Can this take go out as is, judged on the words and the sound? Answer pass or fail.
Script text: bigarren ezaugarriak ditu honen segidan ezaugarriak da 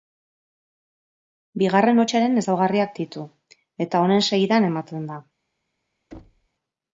fail